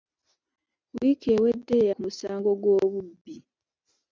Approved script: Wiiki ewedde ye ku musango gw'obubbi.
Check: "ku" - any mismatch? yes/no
no